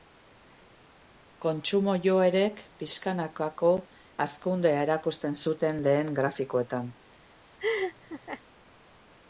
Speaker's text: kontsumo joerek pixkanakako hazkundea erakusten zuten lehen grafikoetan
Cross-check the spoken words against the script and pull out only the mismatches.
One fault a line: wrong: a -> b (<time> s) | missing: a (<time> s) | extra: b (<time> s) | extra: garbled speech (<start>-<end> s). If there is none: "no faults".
no faults